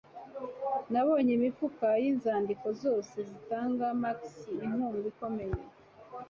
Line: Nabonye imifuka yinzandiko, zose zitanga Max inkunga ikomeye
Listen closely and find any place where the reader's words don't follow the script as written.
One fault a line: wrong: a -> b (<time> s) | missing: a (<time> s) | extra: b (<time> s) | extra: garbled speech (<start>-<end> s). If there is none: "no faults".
no faults